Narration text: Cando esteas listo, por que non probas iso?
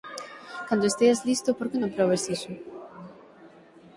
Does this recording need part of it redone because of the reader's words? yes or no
no